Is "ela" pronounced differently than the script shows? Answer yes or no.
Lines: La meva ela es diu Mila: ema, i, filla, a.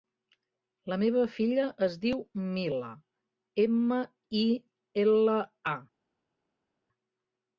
yes